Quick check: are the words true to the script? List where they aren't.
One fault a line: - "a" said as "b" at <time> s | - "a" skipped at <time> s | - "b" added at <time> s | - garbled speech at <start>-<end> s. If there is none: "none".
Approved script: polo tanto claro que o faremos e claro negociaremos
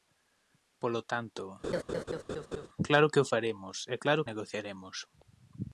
none